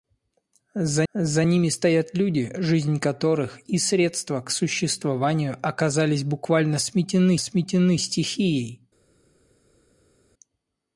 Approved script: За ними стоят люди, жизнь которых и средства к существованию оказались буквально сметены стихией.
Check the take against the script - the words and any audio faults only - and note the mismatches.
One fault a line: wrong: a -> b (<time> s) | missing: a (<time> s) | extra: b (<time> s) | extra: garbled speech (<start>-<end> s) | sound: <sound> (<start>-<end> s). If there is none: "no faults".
extra: за (1.1 s)
extra: сметены (7.4 s)